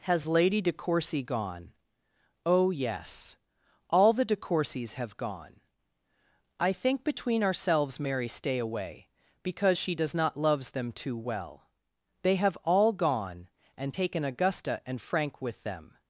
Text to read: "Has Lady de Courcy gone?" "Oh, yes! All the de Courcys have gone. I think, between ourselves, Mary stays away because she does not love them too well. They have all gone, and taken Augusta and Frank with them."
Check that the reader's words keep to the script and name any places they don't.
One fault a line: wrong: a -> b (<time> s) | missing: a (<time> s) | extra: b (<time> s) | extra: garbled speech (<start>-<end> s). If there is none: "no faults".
wrong: stays -> stay (8.3 s)
wrong: love -> loves (10.4 s)